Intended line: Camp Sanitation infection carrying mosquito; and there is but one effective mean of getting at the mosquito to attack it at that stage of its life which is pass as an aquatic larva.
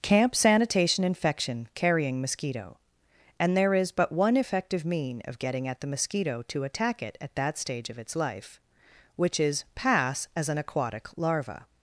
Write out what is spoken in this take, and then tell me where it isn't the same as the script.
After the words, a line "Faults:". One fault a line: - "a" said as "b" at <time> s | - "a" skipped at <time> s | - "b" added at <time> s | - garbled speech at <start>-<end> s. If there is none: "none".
Camp Sanitation infection carrying mosquito; and there is but one effective mean of getting at the mosquito to attack it at that stage of its life which is pass as an aquatic larva.
Faults:
none